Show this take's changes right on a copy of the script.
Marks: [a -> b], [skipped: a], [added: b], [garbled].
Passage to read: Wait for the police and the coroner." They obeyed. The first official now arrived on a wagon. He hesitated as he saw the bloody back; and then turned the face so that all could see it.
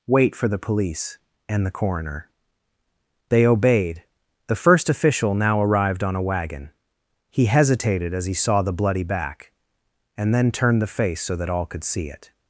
Wait for the police and the coroner." They obeyed. The first official now arrived on a wagon. He hesitated as he saw the bloody back; and then turned the face so that all could see it.